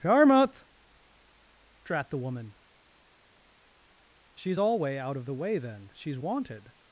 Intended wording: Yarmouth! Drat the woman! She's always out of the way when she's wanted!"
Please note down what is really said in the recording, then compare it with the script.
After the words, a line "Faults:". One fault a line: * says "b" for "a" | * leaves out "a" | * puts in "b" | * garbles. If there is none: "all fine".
Yarmouth! Drat the woman! She's alway out of the way then she's wanted!"
Faults:
* says "alway" for "always"
* says "then" for "when"